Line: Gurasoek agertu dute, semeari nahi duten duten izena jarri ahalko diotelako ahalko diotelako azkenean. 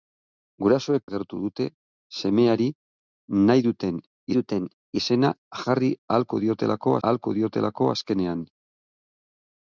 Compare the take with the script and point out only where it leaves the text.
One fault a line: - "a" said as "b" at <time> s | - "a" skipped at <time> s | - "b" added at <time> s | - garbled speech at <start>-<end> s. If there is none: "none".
none